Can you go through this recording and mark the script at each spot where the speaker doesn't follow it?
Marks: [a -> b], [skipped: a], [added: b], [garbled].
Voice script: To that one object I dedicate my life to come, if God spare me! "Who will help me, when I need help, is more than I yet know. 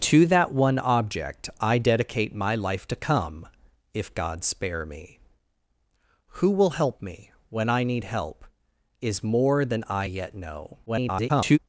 To that one object I dedicate my life to come, if God spare me! "Who will help me, when I need help, is more than I yet know. [garbled]